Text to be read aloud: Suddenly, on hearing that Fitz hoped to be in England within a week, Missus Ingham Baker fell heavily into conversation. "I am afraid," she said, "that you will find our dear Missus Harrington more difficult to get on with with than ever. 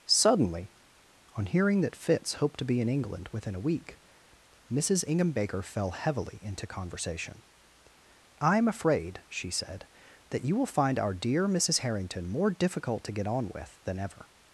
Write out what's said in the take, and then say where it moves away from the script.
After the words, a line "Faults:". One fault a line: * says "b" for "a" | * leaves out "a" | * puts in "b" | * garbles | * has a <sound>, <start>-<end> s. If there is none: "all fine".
Suddenly, on hearing that Fitz hoped to be in England within a week, Missus Ingham Baker fell heavily into conversation. "I am afraid," she said, "that you will find our dear Missus Harrington more difficult to get on with than ever.
Faults:
* leaves out "with"